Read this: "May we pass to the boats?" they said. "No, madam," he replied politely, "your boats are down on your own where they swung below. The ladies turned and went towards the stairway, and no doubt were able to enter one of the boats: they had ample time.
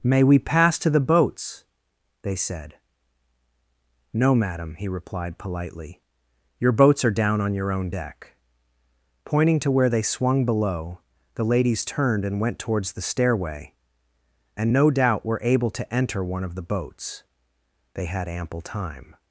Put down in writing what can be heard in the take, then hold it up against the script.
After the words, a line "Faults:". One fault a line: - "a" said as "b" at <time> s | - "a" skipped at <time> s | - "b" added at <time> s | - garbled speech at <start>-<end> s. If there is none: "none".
"May we pass to the boats?" they said. "No, madam," he replied politely, "your boats are down on your own deck," pointing to where they swung below. The ladies turned and went towards the stairway, and no doubt were able to enter one of the boats: they had ample time.
Faults:
- "deck pointing to" added at 7.9 s